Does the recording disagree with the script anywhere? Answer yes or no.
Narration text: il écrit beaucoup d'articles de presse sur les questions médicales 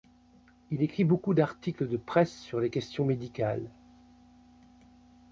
no